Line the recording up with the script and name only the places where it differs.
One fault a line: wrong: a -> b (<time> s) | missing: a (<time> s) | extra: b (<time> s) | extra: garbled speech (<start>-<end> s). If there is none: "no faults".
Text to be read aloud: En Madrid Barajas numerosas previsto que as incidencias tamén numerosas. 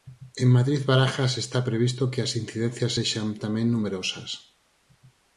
wrong: numerosas -> está (1.4 s)
extra: sexan (3.0 s)